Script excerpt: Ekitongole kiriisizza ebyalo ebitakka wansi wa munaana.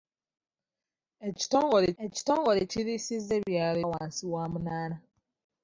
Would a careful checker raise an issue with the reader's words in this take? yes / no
yes